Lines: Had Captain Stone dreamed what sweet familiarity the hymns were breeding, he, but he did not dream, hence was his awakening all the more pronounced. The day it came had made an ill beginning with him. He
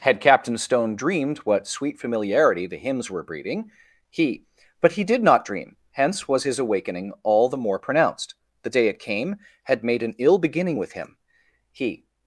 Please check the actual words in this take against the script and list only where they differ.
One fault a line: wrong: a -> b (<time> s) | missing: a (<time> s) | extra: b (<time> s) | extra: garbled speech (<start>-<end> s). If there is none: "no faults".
no faults